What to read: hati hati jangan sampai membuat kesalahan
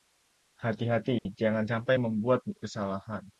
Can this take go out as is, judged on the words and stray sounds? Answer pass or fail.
fail